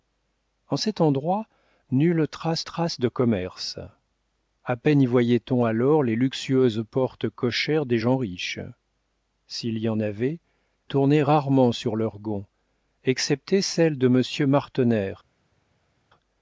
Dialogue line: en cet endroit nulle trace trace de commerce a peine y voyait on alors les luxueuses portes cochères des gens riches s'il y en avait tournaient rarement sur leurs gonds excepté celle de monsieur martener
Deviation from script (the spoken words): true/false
false